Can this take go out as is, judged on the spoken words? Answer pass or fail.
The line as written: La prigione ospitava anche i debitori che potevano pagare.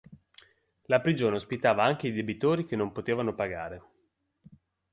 fail